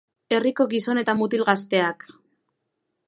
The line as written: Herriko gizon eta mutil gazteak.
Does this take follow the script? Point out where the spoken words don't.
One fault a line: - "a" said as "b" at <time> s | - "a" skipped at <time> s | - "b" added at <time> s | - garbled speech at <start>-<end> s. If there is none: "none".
none